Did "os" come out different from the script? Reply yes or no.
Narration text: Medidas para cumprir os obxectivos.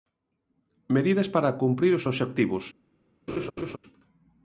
no